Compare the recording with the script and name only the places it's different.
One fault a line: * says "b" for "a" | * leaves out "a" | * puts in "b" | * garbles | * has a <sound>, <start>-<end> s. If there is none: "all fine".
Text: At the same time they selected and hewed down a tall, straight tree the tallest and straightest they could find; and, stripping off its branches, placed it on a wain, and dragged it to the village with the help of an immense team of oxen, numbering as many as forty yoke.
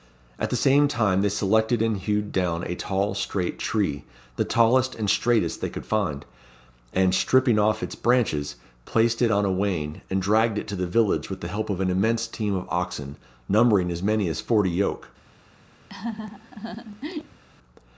* has a laugh, 15.9-17.4 s